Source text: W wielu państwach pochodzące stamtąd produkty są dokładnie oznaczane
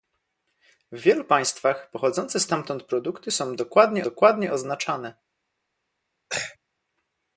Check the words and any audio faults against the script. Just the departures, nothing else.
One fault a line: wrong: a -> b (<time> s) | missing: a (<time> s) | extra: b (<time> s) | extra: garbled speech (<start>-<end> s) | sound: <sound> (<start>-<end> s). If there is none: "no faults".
extra: dokładnie (4.0 s)
sound: throat clearing (6.3-6.6 s)